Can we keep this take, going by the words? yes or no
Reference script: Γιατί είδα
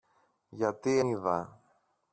yes